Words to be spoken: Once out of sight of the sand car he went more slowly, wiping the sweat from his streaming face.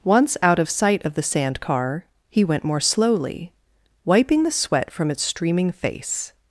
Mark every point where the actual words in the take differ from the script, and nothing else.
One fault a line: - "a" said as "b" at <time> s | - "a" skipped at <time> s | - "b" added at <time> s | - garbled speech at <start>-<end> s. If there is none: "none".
- "his" said as "its" at 5.1 s